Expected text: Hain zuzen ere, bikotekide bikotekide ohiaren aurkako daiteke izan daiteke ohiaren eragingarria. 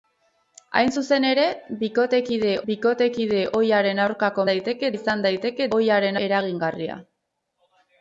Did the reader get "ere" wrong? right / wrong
right